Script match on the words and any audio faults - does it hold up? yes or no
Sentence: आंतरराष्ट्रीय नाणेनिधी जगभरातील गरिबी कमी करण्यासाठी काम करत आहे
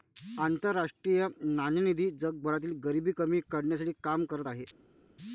yes